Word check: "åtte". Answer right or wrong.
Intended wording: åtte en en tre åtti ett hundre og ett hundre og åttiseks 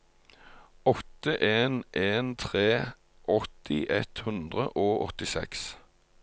right